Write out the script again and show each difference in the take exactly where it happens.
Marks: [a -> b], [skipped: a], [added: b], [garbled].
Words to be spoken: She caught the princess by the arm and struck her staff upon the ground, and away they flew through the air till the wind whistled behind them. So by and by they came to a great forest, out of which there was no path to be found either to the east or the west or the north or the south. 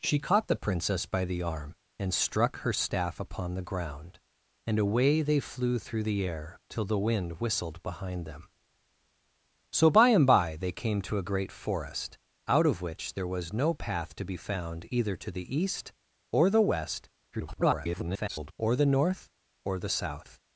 She caught the princess by the arm and struck her staff upon the ground, and away they flew through the air till the wind whistled behind them. So by and by they came to a great forest, out of which there was no path to be found either to the east or the west [garbled] or the north or the south.